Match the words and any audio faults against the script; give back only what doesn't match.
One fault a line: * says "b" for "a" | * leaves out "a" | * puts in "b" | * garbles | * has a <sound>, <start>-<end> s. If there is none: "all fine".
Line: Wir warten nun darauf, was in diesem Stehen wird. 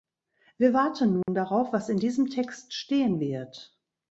* has a dropout, 1.2-1.3 s
* puts in "Text"